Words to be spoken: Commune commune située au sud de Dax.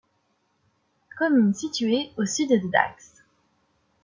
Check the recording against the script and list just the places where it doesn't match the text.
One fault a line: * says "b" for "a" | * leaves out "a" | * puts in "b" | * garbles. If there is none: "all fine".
* leaves out "commune"